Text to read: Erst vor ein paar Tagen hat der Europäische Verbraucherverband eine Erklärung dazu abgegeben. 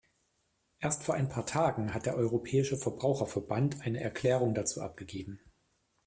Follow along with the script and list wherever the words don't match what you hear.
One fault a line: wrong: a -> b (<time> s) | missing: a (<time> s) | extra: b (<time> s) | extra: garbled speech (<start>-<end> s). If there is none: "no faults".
no faults